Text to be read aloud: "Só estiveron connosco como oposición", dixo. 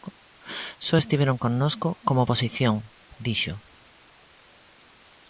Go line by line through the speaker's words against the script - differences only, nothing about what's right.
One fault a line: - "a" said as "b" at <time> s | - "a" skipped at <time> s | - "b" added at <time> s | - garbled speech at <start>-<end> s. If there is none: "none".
none